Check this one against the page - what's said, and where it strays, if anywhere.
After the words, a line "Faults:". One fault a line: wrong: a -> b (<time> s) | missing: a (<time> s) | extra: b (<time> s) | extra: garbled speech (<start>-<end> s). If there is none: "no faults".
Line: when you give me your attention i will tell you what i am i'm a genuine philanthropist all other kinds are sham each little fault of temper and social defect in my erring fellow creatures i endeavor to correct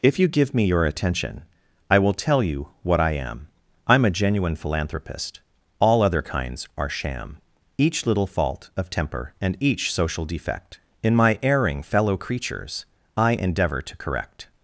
if you give me your attention i will tell you what i am i'm a genuine philanthropist all other kinds are sham each little fault of temper and each social defect in my erring fellow creatures i endeavor to correct
Faults:
wrong: when -> if (0.0 s)
extra: each (9.6 s)